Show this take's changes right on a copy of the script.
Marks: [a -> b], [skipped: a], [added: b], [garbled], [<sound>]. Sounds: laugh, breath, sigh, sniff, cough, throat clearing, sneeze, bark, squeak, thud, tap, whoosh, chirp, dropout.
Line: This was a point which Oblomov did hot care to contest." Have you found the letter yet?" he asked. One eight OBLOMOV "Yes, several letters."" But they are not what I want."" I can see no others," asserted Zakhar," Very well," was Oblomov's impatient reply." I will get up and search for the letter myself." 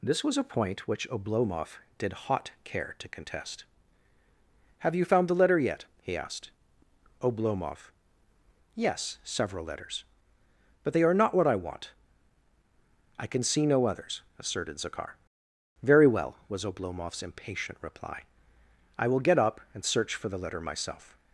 This was a point which Oblomov did hot care to contest." Have you found the letter yet?" he asked. [skipped: One eight] OBLOMOV "Yes, several letters."" But they are not what I want."" I can see no others," asserted Zakhar," Very well," was Oblomov's impatient reply." I will get up and search for the letter myself."